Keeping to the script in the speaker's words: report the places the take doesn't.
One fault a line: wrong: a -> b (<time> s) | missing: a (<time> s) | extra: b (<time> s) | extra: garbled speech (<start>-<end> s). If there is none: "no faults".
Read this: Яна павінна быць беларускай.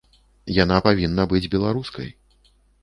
no faults